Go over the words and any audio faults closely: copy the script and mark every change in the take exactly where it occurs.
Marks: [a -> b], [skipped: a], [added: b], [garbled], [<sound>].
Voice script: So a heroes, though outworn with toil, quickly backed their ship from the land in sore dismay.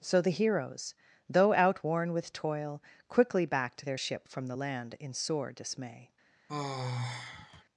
So [a -> the] heroes, though outworn with toil, quickly backed their ship from the land in sore dismay. [sigh]